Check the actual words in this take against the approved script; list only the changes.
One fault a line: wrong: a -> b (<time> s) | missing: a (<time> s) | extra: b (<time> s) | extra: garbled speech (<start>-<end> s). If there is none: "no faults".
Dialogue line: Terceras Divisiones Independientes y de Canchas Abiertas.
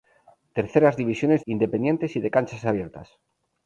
no faults